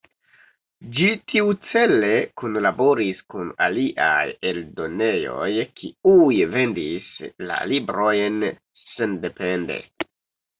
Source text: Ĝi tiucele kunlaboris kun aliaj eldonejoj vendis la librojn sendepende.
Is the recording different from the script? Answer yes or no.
yes